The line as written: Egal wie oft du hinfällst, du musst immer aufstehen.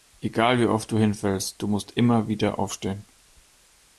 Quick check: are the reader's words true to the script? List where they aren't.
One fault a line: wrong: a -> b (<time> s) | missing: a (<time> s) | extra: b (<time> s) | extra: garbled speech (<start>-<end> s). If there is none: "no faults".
extra: wieder (2.3 s)